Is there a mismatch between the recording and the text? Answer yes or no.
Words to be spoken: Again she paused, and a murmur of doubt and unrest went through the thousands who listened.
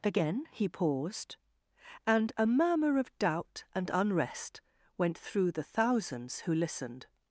yes